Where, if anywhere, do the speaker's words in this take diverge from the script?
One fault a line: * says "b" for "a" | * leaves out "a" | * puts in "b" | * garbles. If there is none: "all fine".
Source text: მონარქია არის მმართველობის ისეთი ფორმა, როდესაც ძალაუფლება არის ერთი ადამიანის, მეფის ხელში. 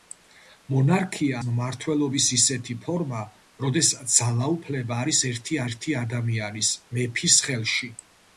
* leaves out "არის"
* puts in "ერთი"